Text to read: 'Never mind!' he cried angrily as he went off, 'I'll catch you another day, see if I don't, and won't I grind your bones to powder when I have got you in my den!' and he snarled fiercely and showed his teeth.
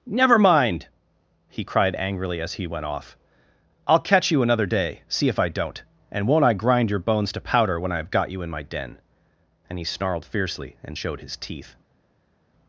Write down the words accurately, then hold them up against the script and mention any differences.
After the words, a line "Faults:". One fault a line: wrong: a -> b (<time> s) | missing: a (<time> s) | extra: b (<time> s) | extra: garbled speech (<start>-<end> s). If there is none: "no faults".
'Never mind!' he cried angrily as he went off, 'I'll catch you another day, see if I don't, and won't I grind your bones to powder when I have got you in my den!' and he snarled fiercely and showed his teeth.
Faults:
no faults